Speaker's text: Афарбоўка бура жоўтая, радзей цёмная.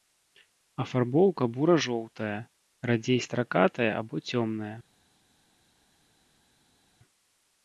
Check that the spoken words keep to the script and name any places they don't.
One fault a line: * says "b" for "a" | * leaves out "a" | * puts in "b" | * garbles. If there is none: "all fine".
* puts in "стракатая або"